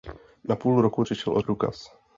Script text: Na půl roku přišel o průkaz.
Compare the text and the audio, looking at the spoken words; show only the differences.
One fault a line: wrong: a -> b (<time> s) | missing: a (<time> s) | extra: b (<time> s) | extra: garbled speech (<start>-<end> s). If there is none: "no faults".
no faults